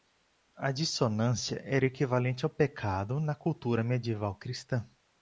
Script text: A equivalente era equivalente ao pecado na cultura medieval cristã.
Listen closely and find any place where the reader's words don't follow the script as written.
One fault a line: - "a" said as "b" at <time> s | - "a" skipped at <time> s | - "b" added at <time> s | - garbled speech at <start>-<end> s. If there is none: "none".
- "equivalente" said as "dissonância" at 0.7 s